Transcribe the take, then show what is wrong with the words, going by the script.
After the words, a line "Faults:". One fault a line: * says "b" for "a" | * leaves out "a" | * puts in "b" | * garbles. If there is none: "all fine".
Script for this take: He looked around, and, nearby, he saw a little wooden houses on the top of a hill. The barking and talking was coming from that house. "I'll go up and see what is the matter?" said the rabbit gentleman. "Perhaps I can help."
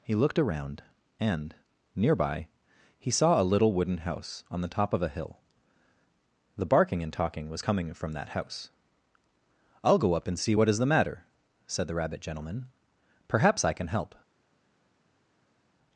He looked around, and, nearby, he saw a little wooden house on the top of a hill. The barking and talking was coming from that house. "I'll go up and see what is the matter?" said the rabbit gentleman. "Perhaps I can help."
Faults:
* says "house" for "houses"